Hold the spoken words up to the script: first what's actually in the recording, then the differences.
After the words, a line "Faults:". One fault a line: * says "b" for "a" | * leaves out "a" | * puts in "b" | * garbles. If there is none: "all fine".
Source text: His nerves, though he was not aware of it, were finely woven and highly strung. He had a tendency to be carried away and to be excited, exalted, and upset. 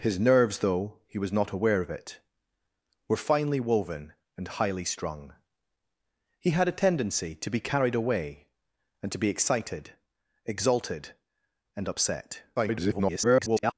His nerves, though he was not aware of it, were finely woven and highly strung. He had a tendency to be carried away and to be excited, exalted, and upset. [garbled]
Faults:
* garbles